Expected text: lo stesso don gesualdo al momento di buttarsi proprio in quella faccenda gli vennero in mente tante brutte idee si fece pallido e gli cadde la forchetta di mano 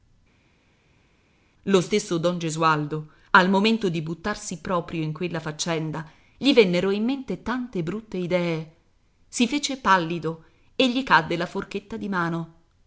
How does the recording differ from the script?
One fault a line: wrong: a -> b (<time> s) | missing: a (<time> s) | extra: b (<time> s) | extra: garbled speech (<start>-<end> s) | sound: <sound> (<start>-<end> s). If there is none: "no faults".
no faults